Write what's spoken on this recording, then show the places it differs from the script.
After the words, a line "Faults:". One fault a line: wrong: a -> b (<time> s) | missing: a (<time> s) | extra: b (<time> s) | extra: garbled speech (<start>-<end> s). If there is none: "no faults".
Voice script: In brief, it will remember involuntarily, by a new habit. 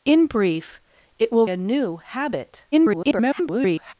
In brief, it will a new habit. [garbled]
Faults:
missing: remember involuntarily by (1.4 s)
extra: garbled speech (2.7-3.9 s)